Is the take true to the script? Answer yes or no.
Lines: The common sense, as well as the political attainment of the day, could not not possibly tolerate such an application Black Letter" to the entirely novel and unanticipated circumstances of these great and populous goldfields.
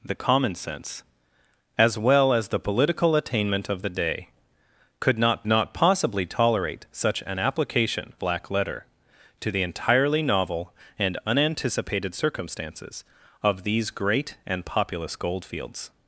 yes